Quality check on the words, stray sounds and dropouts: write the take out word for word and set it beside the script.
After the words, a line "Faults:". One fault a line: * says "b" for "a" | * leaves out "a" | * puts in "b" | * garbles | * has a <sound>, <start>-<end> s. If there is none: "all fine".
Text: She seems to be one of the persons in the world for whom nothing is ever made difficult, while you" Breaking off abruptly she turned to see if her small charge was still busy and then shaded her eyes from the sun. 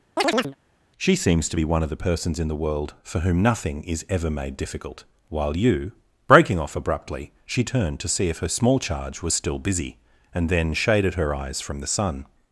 She seems to be one of the persons in the world for whom nothing is ever made difficult, while you" Breaking off abruptly she turned to see if her small charge was still busy and then shaded her eyes from the sun.
Faults:
* has a chirp, 0.2-0.6 s